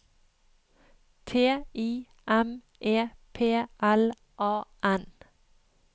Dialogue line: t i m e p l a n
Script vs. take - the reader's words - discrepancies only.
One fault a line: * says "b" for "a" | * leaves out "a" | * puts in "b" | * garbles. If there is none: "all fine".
all fine